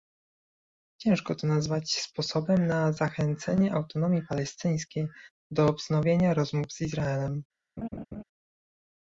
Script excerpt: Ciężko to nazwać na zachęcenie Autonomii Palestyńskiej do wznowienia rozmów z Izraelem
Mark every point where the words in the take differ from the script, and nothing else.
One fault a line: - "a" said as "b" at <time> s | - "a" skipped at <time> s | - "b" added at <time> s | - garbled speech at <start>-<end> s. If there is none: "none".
- "sposobem" added at 2.0 s